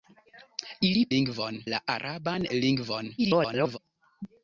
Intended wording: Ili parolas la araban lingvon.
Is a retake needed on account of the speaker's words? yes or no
yes